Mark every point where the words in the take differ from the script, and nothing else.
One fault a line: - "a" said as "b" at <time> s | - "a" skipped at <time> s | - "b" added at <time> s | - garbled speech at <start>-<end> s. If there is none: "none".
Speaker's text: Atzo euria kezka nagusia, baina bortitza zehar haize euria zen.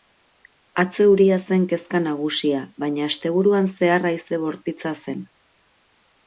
- "zen" added at 1.5 s
- "bortitza" said as "asteburuan" at 3.1 s
- "euria" said as "bortitza" at 4.5 s